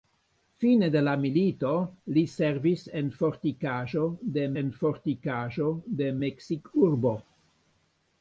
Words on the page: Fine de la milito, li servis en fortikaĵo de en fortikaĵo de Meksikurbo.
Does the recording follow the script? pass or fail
pass